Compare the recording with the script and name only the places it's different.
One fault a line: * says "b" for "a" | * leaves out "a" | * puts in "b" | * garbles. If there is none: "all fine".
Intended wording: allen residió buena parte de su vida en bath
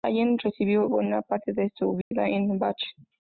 all fine